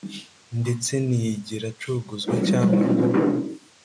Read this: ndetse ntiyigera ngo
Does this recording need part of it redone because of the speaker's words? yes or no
yes